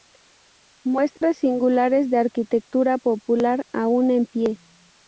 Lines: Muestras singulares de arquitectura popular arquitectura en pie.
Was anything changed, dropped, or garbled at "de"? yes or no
no